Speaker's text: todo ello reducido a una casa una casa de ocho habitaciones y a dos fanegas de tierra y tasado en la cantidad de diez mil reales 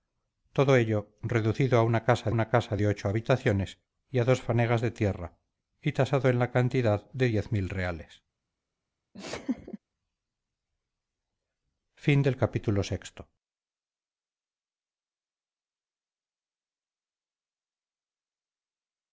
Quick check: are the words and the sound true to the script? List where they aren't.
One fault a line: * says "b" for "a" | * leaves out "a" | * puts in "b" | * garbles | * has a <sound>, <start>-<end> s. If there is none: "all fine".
* has a laugh, 9.1-9.8 s